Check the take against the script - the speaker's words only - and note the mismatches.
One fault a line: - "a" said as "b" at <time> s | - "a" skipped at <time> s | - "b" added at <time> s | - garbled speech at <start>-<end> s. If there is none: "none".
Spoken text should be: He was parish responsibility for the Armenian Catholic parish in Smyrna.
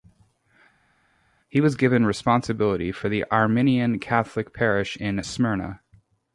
- "parish" said as "given" at 1.8 s